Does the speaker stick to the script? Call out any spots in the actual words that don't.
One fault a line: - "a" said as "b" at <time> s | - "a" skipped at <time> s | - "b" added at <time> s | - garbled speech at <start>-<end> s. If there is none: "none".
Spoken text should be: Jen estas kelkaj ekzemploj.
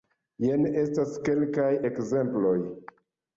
none